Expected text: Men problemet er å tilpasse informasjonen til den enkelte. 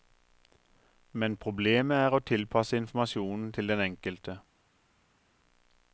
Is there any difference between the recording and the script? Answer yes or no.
no